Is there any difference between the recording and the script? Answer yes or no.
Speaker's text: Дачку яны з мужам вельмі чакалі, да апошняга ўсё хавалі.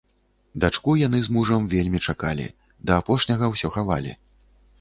no